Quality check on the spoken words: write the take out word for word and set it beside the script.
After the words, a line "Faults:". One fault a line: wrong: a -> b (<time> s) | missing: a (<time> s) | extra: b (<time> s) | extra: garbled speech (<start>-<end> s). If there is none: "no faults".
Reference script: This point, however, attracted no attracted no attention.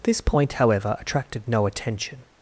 This point, however, attracted no attention.
Faults:
missing: attracted no (1.7 s)